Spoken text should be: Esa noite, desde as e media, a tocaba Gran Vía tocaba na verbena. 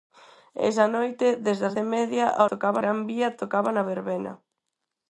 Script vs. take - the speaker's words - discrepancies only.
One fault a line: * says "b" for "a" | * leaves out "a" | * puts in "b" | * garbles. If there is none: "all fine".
all fine